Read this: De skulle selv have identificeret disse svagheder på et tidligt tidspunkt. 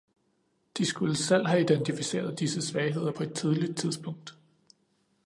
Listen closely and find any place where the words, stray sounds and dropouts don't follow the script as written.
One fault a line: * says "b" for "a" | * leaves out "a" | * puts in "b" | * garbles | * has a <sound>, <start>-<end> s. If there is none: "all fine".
all fine